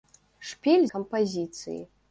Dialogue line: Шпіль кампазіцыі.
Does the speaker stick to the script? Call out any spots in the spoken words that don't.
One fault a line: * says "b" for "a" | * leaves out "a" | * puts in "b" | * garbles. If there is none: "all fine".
all fine